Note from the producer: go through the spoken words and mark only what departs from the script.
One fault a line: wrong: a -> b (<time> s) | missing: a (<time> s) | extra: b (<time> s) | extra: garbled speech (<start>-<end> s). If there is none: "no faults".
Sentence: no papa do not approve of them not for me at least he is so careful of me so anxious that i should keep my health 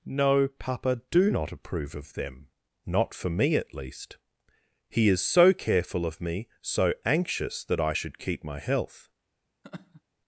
no faults